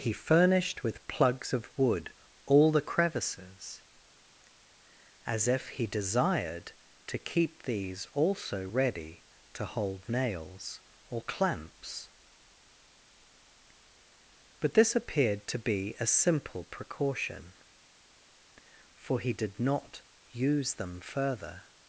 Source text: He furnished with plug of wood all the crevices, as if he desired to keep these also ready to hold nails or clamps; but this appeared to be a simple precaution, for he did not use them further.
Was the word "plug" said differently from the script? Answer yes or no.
yes